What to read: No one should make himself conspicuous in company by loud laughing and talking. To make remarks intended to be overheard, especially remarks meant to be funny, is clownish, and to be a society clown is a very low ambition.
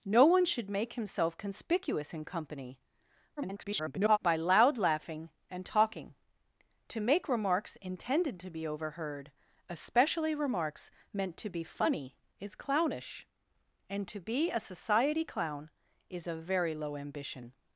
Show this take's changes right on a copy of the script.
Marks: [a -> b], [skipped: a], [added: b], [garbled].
No one should make himself conspicuous in company [garbled] by loud laughing and talking. To make remarks intended to be overheard, especially remarks meant to be funny, is clownish, and to be a society clown is a very low ambition.